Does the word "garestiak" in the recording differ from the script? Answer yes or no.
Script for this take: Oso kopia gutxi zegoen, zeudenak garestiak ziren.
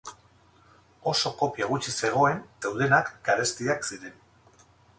no